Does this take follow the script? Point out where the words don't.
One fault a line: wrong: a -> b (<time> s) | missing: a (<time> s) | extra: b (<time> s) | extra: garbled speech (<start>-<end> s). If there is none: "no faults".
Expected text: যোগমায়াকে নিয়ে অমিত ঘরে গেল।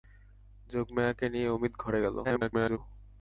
extra: garbled speech (2.2-2.8 s)